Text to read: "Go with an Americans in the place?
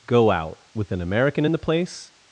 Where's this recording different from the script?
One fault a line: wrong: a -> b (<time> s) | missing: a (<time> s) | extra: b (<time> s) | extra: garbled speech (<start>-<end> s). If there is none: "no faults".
extra: out (0.3 s)
wrong: Americans -> American (1.0 s)